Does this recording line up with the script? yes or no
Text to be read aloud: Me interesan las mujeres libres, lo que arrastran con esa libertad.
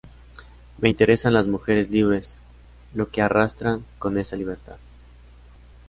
yes